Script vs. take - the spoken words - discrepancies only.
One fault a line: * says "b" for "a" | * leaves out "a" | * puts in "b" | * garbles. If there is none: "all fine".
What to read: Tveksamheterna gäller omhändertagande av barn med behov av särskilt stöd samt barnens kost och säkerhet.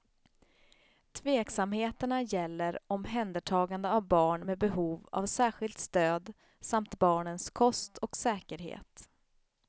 all fine